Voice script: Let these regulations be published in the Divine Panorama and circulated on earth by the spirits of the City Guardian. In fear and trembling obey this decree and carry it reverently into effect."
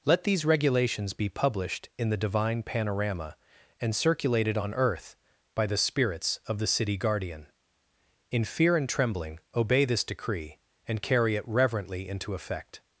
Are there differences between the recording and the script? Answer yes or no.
no